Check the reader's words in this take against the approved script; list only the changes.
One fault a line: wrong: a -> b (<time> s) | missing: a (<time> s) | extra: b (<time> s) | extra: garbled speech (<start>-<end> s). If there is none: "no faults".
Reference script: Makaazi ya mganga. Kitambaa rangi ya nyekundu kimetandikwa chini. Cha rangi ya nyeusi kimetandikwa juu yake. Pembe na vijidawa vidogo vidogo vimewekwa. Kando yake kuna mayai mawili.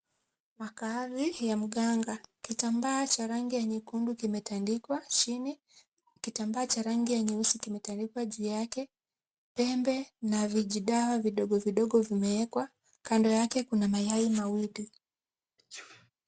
extra: cha (3.1 s)
extra: Kitambaa (6.2 s)